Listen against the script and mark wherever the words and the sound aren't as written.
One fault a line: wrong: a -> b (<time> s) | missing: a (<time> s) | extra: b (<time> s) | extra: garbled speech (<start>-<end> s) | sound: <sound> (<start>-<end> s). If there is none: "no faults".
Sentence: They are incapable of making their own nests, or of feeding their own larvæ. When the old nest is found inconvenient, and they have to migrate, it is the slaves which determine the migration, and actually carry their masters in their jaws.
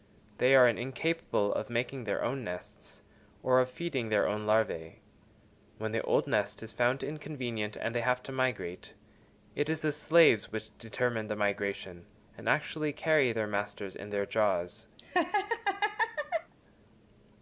sound: laugh (15.0-16.5 s)